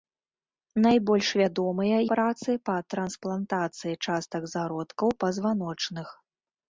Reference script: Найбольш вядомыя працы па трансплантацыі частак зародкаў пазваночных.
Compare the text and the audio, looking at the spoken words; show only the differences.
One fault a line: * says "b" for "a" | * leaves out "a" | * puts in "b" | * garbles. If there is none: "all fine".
all fine